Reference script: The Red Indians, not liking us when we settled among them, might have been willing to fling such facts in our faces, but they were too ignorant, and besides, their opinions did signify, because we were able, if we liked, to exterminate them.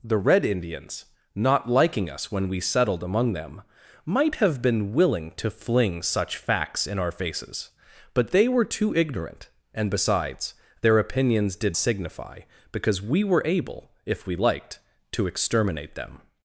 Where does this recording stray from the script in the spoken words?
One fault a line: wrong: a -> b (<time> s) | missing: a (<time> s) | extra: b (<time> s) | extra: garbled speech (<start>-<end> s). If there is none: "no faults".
no faults